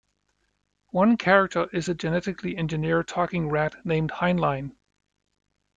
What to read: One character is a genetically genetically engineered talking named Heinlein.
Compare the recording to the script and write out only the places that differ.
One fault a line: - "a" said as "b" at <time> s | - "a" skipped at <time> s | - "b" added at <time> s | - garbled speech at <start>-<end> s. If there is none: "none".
- "genetically" skipped at 2.6 s
- "rat" added at 3.5 s